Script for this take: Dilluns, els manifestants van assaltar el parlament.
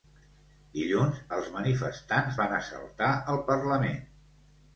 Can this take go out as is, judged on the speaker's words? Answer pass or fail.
pass